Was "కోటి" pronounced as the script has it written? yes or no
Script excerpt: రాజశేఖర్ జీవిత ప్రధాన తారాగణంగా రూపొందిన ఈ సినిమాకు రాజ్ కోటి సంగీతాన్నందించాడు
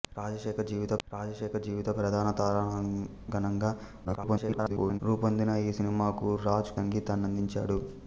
no